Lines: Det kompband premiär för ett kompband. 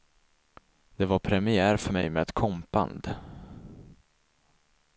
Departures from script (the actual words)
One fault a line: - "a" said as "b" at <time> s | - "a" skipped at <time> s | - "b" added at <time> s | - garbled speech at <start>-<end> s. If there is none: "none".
- "kompband" said as "var" at 1.1 s
- "mig med" added at 1.9 s